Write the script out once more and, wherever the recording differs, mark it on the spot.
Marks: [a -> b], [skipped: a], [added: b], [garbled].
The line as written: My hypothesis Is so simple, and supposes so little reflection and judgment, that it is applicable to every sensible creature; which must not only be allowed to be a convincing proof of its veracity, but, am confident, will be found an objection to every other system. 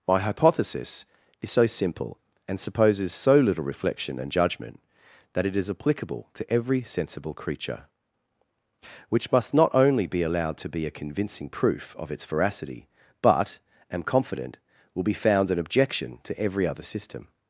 My hypothesis Is so simple, and supposes so little reflection and judgment, that it is applicable to every sensible creature; which must not only be allowed to be a convincing proof of its veracity, but, am confident, will be found an objection to every other system.